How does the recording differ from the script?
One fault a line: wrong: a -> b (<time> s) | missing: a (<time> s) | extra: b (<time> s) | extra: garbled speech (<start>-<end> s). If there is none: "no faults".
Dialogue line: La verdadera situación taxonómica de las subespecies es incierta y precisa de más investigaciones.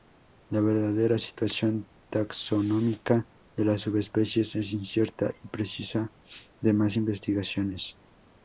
no faults